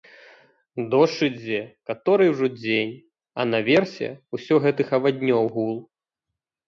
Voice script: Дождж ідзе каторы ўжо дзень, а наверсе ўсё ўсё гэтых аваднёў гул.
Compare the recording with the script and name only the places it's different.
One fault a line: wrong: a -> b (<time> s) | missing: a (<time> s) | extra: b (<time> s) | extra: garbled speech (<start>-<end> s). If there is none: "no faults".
missing: ўсё (4.5 s)